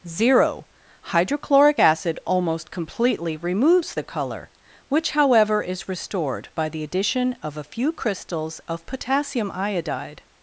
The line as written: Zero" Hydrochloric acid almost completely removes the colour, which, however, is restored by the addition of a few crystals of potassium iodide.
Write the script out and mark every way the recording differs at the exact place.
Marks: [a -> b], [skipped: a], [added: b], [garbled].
Zero" Hydrochloric acid almost completely removes the colour, which, however, is restored by the addition of a few crystals of potassium iodide.